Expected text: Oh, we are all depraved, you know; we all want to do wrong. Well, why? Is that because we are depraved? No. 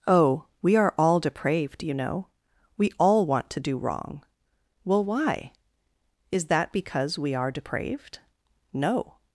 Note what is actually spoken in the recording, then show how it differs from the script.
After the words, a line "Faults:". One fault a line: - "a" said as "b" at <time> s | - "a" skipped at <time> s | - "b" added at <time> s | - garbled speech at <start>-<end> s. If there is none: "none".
Oh, we are all depraved, you know; we all want to do wrong. Well, why? Is that because we are depraved? No.
Faults:
none